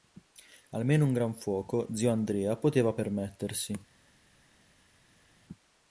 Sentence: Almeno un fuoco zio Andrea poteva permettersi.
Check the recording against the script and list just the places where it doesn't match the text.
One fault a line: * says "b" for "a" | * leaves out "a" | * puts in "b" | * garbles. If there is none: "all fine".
* puts in "gran"